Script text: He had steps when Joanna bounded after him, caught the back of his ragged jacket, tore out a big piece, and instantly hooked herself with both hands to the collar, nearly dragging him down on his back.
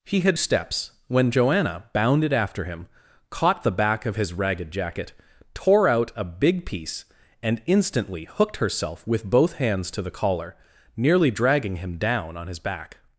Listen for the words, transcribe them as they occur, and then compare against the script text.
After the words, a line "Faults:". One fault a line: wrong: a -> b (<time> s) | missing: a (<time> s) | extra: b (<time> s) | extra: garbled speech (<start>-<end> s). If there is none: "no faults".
He had steps when Joanna bounded after him, caught the back of his ragged jacket, tore out a big piece, and instantly hooked herself with both hands to the collar, nearly dragging him down on his back.
Faults:
no faults